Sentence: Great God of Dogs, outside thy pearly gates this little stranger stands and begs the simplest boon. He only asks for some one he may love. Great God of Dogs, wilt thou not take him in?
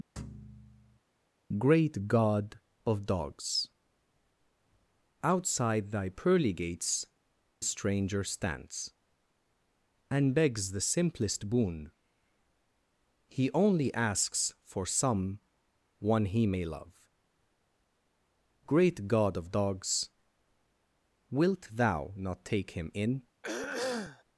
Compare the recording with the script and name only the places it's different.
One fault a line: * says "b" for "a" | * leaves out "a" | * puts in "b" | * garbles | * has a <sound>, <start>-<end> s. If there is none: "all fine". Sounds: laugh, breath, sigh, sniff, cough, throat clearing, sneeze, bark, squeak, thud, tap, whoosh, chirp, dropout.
* has a thud, 0.2-1.0 s
* leaves out "this little"
* has a throat clearing, 23.4-24.2 s